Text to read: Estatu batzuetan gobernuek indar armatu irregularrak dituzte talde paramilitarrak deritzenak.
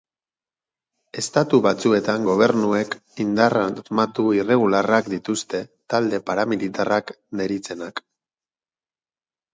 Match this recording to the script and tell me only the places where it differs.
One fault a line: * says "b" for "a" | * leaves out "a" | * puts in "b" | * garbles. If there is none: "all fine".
all fine